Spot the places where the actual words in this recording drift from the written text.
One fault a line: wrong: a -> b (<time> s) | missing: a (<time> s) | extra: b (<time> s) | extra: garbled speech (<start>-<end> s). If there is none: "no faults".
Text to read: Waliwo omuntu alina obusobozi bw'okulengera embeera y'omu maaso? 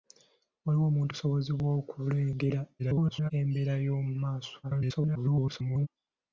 missing: alina (1.1 s)
extra: garbled speech (2.8-3.3 s)
extra: garbled speech (4.6-5.9 s)